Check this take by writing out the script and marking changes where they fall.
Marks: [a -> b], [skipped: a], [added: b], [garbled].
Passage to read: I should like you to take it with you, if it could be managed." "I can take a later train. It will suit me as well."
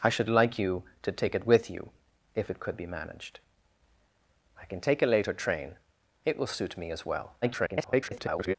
I should like you to take it with you, if it could be managed." "I can take a later train. It will suit me as well." [garbled]